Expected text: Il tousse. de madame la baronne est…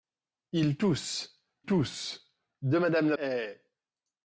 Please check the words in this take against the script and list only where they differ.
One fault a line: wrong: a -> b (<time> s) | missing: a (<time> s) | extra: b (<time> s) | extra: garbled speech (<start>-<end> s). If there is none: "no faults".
extra: tousse (1.6 s)
missing: baronne (3.1 s)